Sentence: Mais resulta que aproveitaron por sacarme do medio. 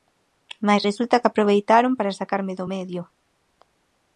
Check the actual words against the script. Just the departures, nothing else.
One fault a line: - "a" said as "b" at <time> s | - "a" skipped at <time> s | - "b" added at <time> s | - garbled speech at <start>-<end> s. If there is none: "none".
- "por" said as "para" at 2.0 s